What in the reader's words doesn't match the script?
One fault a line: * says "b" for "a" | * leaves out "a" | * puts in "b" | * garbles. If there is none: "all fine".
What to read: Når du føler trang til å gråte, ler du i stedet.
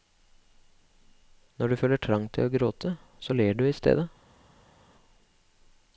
* puts in "så"